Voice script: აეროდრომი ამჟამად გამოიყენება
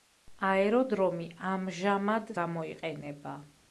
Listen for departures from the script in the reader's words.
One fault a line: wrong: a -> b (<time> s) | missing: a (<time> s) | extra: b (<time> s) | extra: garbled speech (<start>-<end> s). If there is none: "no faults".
no faults